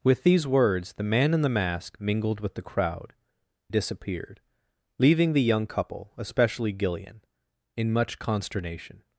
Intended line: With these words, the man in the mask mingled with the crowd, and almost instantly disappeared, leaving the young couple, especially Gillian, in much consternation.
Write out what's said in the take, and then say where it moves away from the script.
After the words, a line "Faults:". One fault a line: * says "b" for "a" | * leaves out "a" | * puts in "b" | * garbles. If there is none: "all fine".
With these words, the man in the mask mingled with the crowd, disappeared, leaving the young couple, especially Gillian, in much consternation.
Faults:
* leaves out "and almost instantly"